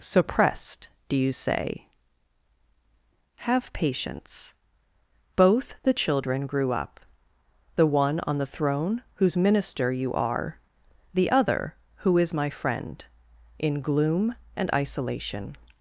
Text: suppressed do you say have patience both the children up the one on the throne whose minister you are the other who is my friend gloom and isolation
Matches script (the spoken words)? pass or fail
fail